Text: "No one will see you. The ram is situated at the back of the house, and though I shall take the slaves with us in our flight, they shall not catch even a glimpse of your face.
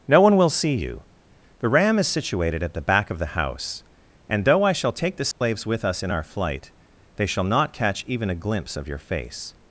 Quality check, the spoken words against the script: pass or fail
pass